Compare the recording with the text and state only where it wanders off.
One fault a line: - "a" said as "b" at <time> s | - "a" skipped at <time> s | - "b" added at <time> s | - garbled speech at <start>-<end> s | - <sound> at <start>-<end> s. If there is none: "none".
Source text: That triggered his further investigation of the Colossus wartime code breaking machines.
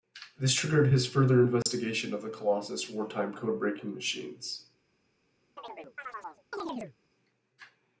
- "That" said as "This" at 0.4 s
- dropout at 1.6-1.7 s
- chirp at 5.6-7.0 s